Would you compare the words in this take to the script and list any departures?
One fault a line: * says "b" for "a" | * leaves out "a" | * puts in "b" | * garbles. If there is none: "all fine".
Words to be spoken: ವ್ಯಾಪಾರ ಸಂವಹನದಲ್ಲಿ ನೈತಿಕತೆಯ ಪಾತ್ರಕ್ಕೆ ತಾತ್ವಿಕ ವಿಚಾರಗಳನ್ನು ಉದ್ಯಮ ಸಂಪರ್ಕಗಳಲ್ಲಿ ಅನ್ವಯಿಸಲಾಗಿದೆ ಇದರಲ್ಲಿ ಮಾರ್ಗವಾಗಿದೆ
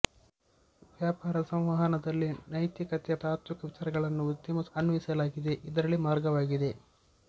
* leaves out "ಪಾತ್ರಕ್ಕೆ"
* leaves out "ಸಂಪರ್ಕಗಳಲ್ಲಿ"